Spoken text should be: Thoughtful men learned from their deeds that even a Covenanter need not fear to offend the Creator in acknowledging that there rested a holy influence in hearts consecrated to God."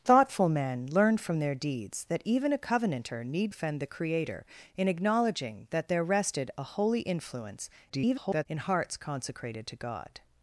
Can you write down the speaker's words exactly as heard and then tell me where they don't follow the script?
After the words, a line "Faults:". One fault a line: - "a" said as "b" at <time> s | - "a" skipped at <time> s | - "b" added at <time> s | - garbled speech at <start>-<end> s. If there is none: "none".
Thoughtful men learned from their deeds that even a Covenanter need offend the Creator in acknowledging that there rested a holy influence [garbled] in hearts consecrated to God."
Faults:
- "not fear to" skipped at 3.5 s
- garbled speech at 7.9-8.5 s